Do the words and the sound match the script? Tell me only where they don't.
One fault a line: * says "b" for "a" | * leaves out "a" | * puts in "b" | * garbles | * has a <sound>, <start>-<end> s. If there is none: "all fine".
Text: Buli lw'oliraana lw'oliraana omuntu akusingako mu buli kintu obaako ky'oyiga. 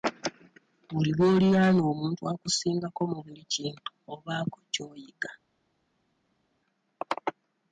* leaves out "lw'oliraana"